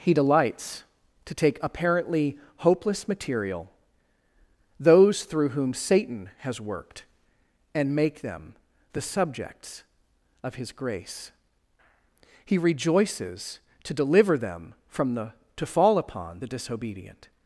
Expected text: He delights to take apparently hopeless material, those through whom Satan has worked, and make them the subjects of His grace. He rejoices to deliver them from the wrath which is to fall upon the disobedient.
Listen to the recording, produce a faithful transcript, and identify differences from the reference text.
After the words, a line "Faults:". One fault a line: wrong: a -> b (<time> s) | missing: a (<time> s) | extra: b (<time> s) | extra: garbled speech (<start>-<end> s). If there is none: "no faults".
He delights to take apparently hopeless material, those through whom Satan has worked, and make them the subjects of His grace. He rejoices to deliver them from the to fall upon the disobedient.
Faults:
missing: wrath which is (15.3 s)